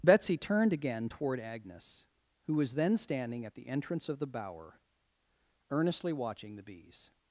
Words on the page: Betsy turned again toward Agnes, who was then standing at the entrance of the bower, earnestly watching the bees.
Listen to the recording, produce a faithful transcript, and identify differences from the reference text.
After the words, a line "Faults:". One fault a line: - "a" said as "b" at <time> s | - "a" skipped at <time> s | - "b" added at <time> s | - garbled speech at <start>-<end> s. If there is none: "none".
Betsy turned again toward Agnes, who was then standing at the entrance of the bower, earnestly watching the bees.
Faults:
none